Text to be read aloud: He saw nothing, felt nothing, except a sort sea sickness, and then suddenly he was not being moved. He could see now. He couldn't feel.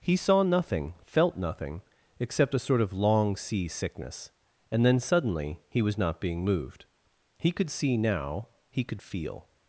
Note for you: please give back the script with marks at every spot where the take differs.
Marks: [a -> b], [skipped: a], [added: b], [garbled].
He saw nothing, felt nothing, except a sort [added: of long] sea sickness, and then suddenly he was not being moved. He could see now. He [couldn't -> could] feel.